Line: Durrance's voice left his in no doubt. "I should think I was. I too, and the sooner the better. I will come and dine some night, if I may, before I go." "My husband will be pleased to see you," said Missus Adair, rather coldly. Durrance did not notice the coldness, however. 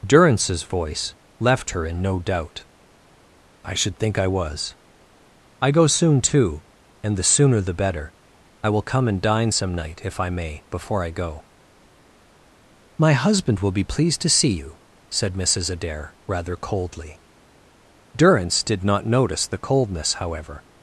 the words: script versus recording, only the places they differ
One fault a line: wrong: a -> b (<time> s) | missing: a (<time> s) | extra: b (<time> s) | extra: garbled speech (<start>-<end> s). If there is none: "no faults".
wrong: his -> her (1.7 s)
extra: go soon (5.7 s)